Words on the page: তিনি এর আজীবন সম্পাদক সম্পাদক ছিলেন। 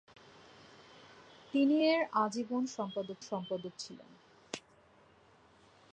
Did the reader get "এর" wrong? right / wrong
right